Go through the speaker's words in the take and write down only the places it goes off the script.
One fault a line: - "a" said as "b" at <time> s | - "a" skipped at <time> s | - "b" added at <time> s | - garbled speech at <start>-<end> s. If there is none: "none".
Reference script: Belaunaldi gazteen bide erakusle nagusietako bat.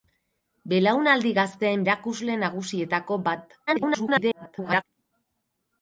- "bide" skipped at 1.8 s
- garbled speech at 3.7-4.8 s